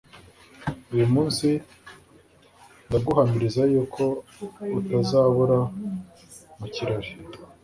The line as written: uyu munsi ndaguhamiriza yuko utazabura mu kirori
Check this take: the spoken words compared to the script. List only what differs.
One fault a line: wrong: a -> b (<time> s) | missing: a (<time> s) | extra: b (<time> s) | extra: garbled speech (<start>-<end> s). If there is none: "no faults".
no faults